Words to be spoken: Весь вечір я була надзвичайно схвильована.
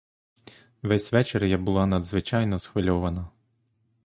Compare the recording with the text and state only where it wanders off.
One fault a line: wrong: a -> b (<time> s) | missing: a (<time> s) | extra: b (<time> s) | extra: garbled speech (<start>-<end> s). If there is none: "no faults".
no faults